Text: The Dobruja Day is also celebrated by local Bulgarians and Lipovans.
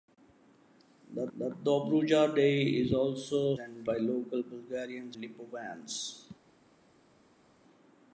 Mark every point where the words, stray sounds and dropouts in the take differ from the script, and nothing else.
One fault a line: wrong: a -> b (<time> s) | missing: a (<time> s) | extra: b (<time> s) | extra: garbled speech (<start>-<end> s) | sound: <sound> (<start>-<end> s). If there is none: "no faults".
extra: the (1.4 s)
wrong: celebrated -> and (3.6 s)
missing: and (5.2 s)